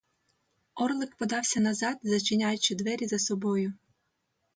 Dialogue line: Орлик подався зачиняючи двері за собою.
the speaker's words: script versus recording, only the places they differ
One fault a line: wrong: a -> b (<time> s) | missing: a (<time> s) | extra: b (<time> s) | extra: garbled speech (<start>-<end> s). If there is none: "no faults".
extra: назад (1.6 s)